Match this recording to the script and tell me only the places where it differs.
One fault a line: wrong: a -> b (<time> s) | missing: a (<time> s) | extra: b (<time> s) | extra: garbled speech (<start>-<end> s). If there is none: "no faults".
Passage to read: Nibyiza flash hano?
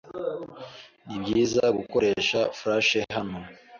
extra: gukoresha (1.8 s)